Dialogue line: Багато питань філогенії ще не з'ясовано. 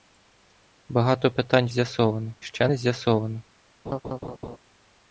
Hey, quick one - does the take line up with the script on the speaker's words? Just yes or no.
no